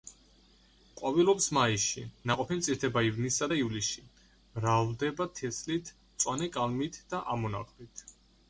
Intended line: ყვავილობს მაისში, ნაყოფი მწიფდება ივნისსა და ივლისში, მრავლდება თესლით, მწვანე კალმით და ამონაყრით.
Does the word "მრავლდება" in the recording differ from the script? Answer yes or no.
no